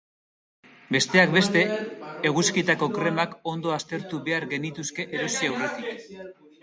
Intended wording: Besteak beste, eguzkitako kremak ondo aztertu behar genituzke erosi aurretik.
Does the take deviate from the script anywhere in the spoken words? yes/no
no